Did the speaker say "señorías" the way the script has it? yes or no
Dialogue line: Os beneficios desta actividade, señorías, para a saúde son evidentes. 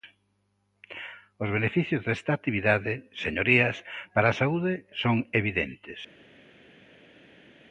yes